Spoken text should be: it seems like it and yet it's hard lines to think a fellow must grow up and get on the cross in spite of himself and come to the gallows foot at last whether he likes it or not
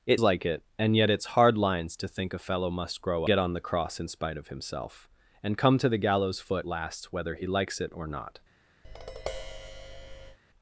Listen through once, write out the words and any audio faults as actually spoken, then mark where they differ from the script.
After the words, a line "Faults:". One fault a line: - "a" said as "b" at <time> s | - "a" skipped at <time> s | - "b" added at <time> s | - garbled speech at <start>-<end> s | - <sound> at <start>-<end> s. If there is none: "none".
it like it and yet it's hard lines to think a fellow must grow get on the cross in spite of himself and come to the gallows foot last whether he likes it or not
Faults:
- "seems" skipped at 0.2 s
- "up and" skipped at 3.2 s
- "at" skipped at 6.7 s
- tap at 8.8-10.4 s